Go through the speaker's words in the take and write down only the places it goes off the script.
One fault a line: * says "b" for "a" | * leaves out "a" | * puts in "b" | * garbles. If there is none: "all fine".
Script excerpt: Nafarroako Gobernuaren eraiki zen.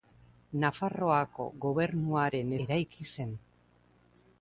all fine